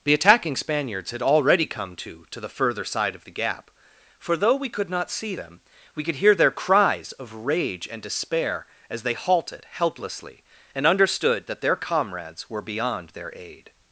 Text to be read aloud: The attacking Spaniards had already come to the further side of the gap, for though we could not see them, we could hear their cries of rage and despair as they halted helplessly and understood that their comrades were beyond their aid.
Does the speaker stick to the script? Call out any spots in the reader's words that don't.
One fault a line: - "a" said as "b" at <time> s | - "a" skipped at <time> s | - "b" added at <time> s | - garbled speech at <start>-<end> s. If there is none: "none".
- "to" added at 2.3 s